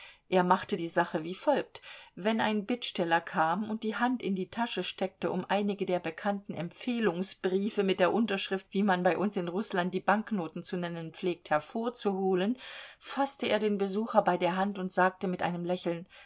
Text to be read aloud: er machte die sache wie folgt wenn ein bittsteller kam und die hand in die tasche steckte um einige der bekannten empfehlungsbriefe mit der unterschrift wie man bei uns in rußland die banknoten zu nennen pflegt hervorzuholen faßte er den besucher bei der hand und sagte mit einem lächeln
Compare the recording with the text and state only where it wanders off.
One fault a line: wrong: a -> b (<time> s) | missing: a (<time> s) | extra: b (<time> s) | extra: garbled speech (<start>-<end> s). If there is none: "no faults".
no faults